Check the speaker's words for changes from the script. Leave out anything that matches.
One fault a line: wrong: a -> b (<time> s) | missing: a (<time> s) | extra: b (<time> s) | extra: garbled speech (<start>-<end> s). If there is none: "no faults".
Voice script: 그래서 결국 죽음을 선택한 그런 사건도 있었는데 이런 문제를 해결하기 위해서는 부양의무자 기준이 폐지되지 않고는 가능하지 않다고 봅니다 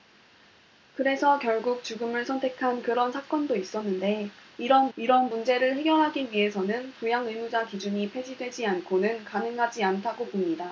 extra: 이런 (5.0 s)